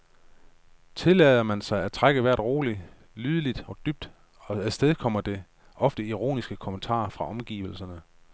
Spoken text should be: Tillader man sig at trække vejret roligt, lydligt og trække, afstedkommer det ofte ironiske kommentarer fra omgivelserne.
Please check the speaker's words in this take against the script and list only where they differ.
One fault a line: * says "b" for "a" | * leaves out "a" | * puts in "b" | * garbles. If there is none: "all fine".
* says "dybt" for "trække"